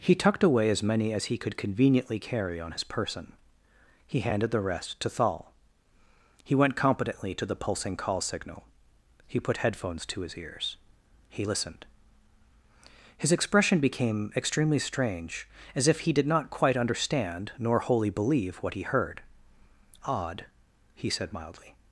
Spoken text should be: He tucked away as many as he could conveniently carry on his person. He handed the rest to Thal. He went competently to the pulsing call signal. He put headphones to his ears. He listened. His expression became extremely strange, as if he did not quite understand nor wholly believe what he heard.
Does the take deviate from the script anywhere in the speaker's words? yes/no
yes